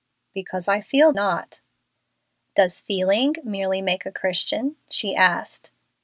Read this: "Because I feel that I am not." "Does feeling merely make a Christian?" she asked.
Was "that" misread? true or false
true